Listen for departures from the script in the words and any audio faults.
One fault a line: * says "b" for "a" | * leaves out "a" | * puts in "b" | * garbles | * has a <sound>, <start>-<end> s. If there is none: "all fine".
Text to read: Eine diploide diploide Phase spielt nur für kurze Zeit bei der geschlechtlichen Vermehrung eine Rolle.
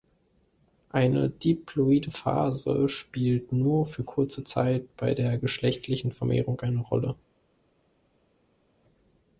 * leaves out "diploide"